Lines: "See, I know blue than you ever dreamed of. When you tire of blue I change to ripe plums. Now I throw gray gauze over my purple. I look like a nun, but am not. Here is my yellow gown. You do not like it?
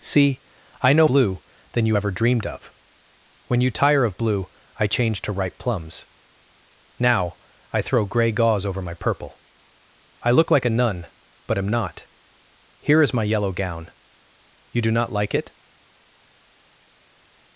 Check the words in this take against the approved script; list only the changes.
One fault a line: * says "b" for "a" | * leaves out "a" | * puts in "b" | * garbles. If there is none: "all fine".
all fine